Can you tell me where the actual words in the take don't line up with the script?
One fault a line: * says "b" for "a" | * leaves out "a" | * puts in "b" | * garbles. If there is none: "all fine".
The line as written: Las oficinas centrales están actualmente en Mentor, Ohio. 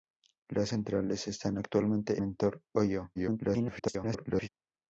* leaves out "oficinas"
* leaves out "en"
* garbles